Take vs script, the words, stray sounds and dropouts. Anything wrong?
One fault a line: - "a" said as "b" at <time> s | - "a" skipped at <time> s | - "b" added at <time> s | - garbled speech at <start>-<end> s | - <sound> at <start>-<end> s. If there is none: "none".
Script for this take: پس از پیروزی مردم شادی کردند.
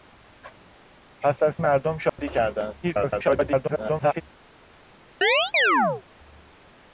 - "پیروزی" skipped at 1.6 s
- dropout at 2.1-2.2 s
- garbled speech at 2.8-4.2 s
- chirp at 5.2-6.0 s